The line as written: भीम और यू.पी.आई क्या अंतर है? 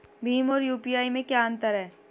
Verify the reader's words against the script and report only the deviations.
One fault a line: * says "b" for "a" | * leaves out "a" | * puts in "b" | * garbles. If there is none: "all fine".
* puts in "में"